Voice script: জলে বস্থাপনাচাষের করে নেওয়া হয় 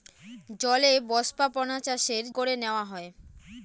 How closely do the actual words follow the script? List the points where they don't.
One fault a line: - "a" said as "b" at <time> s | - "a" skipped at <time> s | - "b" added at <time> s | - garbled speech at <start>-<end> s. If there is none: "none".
none